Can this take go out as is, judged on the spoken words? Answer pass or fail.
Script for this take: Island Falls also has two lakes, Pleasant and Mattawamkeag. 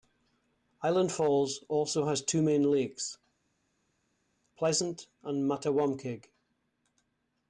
fail